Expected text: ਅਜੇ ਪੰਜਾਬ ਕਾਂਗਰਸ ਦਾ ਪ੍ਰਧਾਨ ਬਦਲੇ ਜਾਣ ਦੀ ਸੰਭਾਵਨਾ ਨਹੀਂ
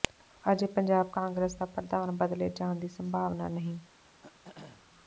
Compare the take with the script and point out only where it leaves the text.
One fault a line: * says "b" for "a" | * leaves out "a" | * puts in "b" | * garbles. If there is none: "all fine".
all fine